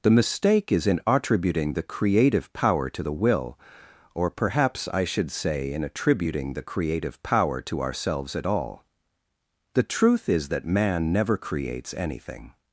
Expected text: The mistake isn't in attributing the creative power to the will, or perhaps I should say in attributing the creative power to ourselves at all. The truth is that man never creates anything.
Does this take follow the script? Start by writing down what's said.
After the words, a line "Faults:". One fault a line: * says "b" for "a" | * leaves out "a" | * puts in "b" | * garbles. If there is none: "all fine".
The mistake is in attributing the creative power to the will, or perhaps I should say in attributing the creative power to ourselves at all. The truth is that man never creates anything.
Faults:
* says "is" for "isn't"